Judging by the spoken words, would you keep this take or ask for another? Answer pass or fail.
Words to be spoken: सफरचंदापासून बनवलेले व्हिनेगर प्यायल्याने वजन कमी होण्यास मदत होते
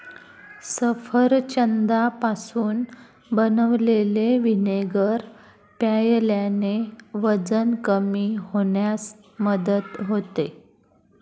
pass